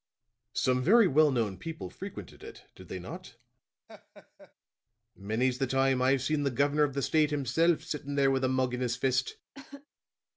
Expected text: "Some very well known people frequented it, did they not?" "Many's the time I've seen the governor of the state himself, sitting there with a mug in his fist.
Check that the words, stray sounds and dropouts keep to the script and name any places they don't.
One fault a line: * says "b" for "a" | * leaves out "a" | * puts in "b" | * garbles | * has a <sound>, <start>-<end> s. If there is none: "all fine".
* has a laugh, 3.9-4.5 s
* has a cough, 9.5-9.9 s